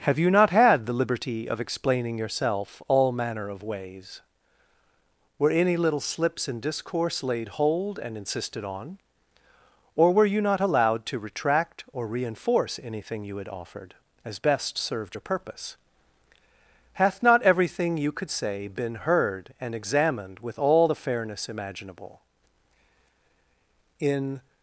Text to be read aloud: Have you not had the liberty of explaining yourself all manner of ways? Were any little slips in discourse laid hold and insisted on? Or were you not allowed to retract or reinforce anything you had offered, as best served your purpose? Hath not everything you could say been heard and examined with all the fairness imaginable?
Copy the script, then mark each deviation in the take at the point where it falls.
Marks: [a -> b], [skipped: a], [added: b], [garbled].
Have you not had the liberty of explaining yourself all manner of ways? Were any little slips in discourse laid hold and insisted on? Or were you not allowed to retract or reinforce anything you had offered, as best served your purpose? Hath not everything you could say been heard and examined with all the fairness imaginable? [added: In]